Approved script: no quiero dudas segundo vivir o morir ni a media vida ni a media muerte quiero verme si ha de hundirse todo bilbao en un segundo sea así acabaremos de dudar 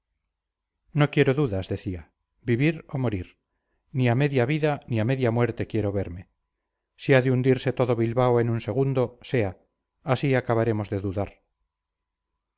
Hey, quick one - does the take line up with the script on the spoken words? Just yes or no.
no